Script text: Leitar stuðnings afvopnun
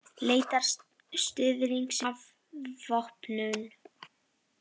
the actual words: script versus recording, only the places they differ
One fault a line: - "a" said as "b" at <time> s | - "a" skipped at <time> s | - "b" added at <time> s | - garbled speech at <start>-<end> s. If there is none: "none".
none